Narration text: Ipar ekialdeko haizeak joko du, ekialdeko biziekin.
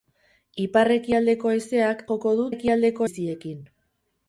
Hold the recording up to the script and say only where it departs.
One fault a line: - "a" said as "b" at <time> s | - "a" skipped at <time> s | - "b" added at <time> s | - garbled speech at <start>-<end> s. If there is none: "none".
none